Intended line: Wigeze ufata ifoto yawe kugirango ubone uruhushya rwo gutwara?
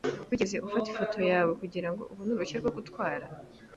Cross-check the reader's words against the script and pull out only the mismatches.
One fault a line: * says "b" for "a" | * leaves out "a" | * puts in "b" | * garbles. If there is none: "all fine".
all fine